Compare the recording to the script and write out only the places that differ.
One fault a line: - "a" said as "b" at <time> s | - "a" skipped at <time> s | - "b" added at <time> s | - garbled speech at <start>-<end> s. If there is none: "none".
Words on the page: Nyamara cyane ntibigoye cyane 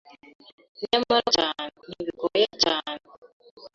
none